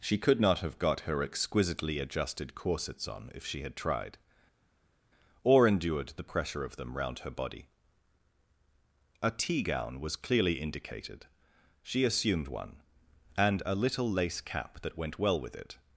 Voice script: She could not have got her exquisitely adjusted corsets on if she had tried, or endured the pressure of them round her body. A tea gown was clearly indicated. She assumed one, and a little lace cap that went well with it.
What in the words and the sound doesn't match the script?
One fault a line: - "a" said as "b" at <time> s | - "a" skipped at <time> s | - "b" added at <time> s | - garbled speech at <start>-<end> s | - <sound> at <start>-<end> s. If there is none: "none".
none